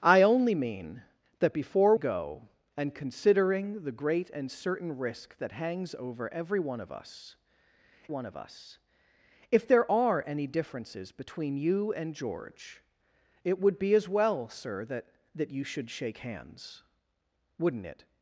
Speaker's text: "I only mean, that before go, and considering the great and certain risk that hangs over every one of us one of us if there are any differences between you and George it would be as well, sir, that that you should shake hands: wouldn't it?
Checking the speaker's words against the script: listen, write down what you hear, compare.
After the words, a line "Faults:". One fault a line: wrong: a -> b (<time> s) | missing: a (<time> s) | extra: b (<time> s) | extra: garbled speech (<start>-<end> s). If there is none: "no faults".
"I only mean, that before go, and considering the great and certain risk that hangs over every one of us one of us if there are any differences between you and George it would be as well, sir, that that you should shake hands: wouldn't it?
Faults:
no faults